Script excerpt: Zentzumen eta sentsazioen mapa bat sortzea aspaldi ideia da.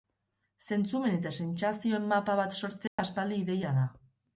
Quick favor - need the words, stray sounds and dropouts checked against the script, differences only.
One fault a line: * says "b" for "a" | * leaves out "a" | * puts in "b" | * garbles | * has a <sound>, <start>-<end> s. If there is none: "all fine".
* has a dropout, 2.9-3.0 s